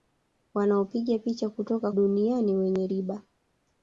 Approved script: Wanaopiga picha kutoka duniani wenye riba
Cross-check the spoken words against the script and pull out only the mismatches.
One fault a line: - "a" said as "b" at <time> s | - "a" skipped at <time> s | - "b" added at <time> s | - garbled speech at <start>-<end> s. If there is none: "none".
none